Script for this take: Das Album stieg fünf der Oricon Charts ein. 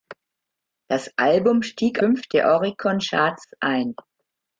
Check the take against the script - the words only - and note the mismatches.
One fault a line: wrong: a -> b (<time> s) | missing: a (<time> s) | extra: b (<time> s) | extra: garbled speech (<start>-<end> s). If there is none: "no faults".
no faults